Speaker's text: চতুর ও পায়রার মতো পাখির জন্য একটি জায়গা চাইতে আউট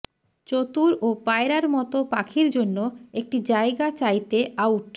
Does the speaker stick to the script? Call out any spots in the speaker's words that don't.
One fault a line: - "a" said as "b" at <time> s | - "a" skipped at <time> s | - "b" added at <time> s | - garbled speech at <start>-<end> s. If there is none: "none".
none